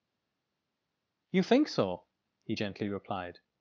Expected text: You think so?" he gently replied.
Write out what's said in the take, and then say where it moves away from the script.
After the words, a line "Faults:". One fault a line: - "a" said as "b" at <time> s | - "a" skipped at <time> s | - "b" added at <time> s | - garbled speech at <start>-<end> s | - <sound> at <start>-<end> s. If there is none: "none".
You think so?" he gently replied.
Faults:
none